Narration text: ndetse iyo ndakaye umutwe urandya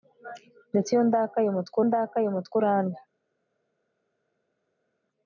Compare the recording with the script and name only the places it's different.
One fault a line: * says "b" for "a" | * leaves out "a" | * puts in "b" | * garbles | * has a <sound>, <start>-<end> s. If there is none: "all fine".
* puts in "ndakaye umutwe"